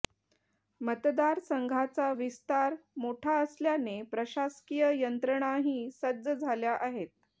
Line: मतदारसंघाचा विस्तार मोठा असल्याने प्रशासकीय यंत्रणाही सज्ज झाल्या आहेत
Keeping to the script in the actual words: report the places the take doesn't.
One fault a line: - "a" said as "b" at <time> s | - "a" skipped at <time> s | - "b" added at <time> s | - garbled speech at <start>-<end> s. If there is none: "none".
none